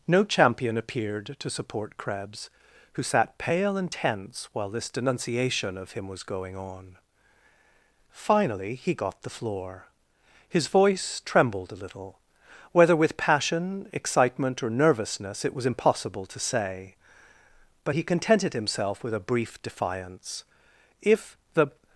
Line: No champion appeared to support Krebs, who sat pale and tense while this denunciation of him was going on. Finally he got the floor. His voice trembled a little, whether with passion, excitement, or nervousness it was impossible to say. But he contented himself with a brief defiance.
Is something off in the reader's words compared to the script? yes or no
yes